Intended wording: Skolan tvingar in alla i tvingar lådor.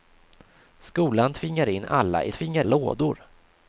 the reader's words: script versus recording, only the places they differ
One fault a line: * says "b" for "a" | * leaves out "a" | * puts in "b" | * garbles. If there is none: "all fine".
all fine